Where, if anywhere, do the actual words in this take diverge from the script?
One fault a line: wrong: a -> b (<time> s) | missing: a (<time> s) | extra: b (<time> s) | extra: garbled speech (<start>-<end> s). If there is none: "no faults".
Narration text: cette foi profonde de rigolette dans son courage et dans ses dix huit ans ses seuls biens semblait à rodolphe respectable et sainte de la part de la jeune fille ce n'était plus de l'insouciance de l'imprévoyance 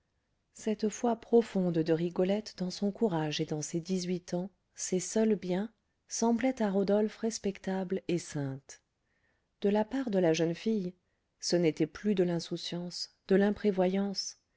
no faults